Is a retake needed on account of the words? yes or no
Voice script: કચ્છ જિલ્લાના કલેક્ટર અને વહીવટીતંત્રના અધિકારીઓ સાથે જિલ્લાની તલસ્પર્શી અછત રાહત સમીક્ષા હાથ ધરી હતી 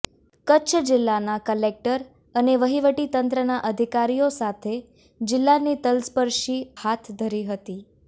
yes